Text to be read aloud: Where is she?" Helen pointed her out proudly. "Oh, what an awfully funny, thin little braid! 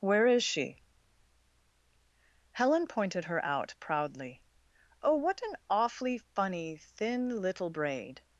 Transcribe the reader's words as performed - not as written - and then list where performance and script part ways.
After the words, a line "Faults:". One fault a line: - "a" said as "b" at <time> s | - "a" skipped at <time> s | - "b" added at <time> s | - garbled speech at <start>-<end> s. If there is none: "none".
Where is she?" Helen pointed her out proudly. "Oh, what an awfully funny, thin little braid!
Faults:
none